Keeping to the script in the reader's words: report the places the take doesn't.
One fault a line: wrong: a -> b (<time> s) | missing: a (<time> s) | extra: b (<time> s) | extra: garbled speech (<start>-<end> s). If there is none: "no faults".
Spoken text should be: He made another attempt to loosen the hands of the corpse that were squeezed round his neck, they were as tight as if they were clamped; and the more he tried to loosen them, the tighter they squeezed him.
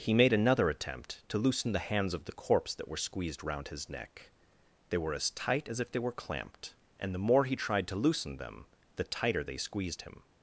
no faults